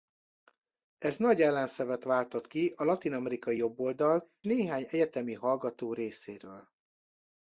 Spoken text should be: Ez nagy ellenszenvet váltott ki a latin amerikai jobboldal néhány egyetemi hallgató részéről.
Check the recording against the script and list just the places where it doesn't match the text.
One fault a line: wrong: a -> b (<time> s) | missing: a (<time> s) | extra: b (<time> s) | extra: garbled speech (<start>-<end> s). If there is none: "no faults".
no faults